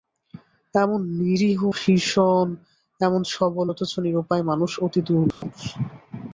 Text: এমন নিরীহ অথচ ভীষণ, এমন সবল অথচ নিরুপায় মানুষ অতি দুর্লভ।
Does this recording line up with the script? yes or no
no